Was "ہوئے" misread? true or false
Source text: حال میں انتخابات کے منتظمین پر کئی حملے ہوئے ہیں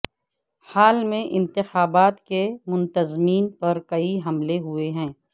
false